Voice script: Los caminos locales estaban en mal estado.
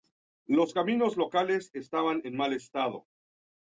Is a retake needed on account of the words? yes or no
no